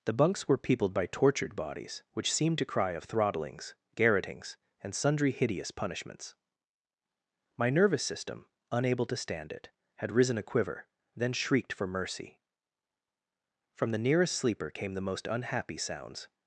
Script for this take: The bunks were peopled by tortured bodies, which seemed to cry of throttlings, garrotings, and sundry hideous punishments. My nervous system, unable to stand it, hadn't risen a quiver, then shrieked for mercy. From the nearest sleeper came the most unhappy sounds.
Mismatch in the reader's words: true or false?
true